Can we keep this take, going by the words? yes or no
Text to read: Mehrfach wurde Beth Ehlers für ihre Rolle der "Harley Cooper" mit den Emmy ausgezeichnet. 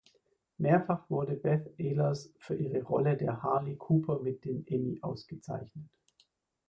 yes